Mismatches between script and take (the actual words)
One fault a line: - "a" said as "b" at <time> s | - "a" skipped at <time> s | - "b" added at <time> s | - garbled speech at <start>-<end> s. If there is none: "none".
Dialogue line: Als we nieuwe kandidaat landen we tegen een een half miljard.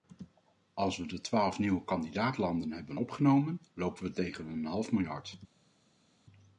- "de twaalf" added at 1.1 s
- "hebben opgenomen lopen" added at 2.7 s
- "een" skipped at 4.7 s